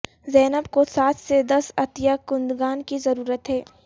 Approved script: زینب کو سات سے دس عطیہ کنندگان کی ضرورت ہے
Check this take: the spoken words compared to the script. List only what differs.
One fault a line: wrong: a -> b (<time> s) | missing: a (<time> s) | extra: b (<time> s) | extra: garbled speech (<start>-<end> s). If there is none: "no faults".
no faults